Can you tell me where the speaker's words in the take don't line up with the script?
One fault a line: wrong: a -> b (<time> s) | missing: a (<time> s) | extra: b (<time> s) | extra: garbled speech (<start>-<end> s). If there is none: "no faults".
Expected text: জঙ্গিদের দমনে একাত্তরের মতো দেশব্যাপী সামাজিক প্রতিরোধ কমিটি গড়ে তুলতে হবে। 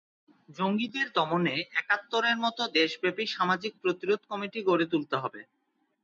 no faults